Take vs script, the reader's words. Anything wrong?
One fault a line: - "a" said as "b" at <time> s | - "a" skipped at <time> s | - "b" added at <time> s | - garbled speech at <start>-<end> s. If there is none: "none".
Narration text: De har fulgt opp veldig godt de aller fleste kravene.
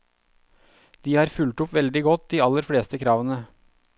none